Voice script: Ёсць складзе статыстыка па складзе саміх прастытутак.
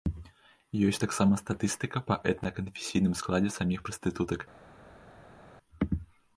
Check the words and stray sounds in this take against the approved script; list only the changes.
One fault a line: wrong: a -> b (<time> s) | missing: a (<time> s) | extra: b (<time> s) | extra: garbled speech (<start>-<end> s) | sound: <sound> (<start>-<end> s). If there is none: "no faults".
wrong: складзе -> таксама (1.0 s)
extra: этна канфесійным (2.3 s)